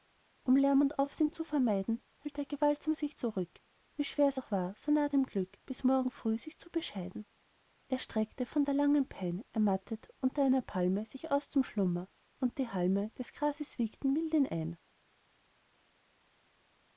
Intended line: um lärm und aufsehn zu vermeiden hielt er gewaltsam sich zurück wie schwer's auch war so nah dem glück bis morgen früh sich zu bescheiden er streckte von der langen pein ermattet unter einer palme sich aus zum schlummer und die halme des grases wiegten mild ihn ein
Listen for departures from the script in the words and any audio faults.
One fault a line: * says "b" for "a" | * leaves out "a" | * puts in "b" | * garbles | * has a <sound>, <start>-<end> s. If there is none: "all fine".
all fine